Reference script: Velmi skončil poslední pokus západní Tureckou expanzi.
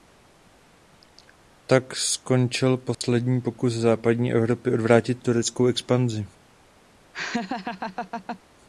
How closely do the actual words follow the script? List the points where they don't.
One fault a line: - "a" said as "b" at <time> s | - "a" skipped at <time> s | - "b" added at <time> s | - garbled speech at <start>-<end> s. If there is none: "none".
- "Velmi" said as "Tak" at 1.6 s
- "Evropy odvrátit" added at 4.3 s